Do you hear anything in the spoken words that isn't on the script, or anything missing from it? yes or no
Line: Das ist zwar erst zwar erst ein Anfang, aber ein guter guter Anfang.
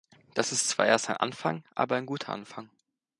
yes